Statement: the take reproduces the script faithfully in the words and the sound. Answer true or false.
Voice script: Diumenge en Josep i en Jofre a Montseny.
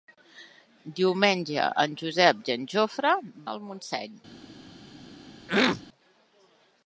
false